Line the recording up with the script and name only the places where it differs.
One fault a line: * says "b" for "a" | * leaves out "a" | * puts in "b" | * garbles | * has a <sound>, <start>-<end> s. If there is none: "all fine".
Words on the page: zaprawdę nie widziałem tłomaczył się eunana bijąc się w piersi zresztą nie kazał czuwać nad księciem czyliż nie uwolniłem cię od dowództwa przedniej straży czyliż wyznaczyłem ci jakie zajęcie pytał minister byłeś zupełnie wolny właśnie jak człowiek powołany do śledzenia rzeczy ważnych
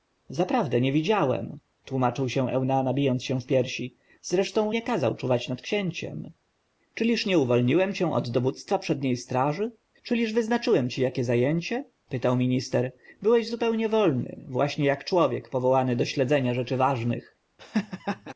* has a laugh, 17.6-18.3 s